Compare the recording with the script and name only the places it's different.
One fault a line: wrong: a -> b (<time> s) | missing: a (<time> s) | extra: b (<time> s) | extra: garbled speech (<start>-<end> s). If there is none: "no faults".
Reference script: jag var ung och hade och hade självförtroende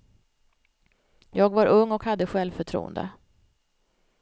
missing: och hade (2.3 s)